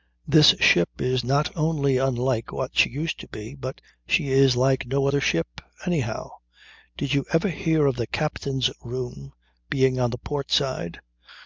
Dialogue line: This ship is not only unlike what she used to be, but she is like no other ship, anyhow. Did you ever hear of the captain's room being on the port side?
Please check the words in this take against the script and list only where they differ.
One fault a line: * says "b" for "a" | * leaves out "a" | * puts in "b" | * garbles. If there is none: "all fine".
all fine